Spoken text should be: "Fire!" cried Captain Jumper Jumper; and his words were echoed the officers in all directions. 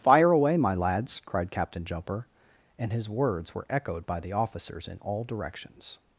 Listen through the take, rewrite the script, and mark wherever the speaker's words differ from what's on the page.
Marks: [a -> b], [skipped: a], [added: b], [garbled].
"Fire!" [added: away my lads] cried Captain Jumper [skipped: Jumper;] and his words were echoed [added: by] the officers in all directions.